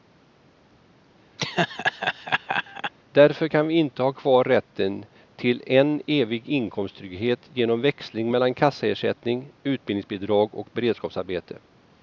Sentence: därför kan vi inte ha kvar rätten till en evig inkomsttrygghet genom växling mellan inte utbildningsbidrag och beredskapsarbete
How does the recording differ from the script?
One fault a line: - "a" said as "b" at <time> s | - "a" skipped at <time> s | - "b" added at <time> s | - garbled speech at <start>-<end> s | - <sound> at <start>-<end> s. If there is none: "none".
- laugh at 1.4-2.9 s
- "inte" said as "kassaersättning" at 8.5 s